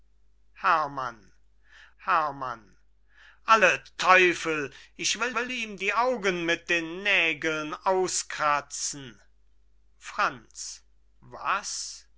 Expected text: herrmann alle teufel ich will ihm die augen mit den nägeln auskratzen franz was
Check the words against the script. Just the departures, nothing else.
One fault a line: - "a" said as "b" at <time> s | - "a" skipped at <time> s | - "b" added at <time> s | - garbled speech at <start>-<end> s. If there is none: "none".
- "herrmann" added at 2.0 s
- "will" added at 5.3 s